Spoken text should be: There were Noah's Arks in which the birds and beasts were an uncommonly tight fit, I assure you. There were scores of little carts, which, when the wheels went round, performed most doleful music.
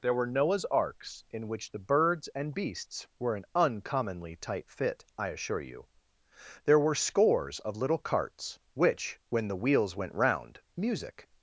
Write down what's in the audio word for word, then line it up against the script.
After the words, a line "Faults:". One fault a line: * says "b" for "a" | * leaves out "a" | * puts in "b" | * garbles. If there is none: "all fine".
There were Noah's Arks in which the birds and beasts were an uncommonly tight fit, I assure you. There were scores of little carts, which, when the wheels went round, music.
Faults:
* leaves out "performed most doleful"